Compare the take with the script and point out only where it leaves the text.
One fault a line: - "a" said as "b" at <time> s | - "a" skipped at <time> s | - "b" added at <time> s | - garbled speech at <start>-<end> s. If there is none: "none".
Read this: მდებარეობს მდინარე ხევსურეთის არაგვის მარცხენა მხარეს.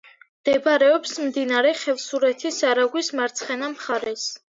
none